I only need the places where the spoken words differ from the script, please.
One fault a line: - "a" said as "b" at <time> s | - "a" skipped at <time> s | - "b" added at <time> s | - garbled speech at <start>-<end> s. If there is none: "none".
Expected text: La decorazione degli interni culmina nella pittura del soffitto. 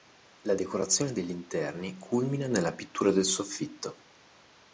none